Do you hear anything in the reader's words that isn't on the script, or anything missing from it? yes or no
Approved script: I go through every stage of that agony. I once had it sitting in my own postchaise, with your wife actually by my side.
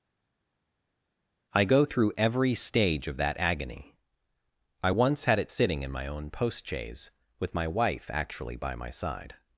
yes